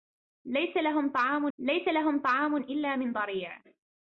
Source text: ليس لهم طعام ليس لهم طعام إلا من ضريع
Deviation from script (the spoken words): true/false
false